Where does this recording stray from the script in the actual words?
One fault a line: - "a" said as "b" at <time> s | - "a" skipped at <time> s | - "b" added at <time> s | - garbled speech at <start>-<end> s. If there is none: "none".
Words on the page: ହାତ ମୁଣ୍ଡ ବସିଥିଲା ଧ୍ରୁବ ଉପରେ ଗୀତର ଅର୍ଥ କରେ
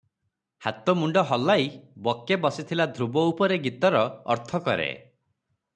- "ହଲାଇ ବକେ" added at 1.3 s